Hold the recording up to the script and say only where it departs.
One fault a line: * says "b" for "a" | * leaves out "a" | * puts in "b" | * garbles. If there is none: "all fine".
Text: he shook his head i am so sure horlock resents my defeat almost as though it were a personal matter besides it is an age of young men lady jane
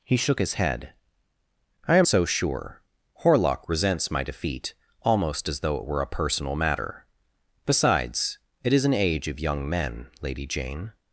all fine